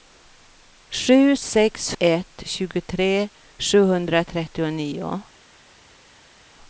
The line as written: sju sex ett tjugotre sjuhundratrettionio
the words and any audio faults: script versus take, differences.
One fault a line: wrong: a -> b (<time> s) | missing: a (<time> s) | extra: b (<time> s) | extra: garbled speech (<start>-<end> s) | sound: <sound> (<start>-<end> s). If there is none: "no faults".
no faults